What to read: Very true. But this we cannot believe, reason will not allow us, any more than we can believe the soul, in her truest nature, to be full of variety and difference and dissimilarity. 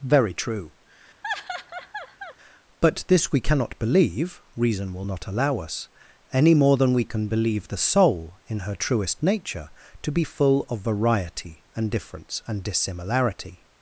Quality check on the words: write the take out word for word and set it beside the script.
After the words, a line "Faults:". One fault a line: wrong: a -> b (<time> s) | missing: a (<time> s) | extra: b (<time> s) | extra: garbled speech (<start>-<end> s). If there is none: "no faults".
Very true. But this we cannot believe, reason will not allow us, any more than we can believe the soul, in her truest nature, to be full of variety and difference and dissimilarity.
Faults:
no faults